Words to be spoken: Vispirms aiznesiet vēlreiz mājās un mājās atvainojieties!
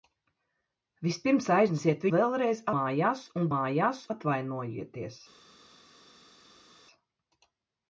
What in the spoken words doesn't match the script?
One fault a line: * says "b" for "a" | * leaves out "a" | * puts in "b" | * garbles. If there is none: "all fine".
all fine